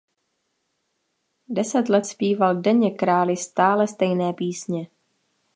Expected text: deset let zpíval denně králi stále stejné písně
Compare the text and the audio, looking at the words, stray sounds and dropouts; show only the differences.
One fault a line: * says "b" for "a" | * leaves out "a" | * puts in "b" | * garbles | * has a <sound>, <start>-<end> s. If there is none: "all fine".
all fine